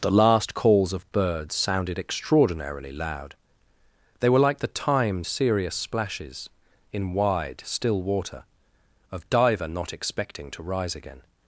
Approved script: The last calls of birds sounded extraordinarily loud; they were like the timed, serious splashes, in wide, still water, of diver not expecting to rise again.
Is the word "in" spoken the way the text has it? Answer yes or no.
yes